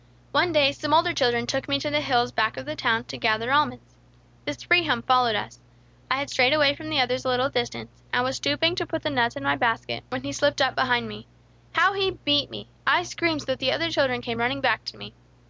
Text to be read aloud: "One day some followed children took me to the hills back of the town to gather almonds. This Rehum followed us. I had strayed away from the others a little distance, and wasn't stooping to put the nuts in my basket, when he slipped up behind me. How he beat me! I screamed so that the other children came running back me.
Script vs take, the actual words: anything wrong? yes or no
yes